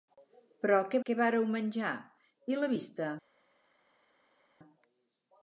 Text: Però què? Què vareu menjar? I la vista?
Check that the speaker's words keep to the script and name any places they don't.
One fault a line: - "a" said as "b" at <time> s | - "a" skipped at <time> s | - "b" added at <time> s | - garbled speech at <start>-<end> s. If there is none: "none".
none